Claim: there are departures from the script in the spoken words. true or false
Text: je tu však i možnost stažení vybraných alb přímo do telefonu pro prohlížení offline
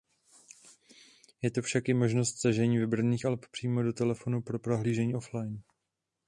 false